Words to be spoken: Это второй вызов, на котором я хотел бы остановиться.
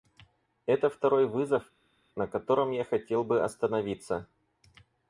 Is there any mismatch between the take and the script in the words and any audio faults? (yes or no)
no